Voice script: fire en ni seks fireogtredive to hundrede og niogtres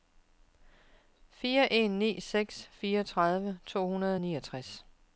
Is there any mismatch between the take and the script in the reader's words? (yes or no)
no